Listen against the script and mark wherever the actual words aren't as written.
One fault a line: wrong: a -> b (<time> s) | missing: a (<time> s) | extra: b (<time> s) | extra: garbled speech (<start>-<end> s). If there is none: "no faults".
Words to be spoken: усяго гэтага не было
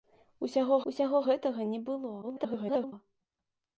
extra: усяго (0.9 s)
extra: garbled speech (2.2-2.9 s)